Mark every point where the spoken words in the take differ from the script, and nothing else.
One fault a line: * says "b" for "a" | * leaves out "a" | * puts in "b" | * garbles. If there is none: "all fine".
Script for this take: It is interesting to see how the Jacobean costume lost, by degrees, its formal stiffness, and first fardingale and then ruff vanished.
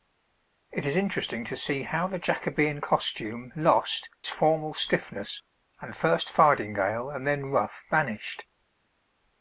* leaves out "by degrees its"